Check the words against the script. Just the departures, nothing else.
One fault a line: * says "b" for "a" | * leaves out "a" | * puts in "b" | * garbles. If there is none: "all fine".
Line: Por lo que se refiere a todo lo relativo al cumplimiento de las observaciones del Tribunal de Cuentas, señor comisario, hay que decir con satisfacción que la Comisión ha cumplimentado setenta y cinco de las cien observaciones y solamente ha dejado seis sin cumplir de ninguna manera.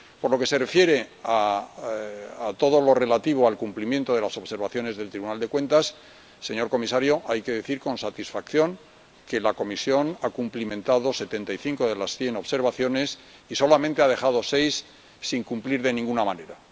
all fine